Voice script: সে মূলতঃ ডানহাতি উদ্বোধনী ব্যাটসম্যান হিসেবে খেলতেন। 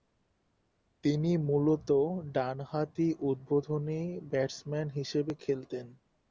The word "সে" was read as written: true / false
false